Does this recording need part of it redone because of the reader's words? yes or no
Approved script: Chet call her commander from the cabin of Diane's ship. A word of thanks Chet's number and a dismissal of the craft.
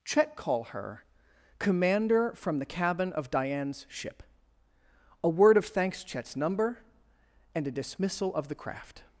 no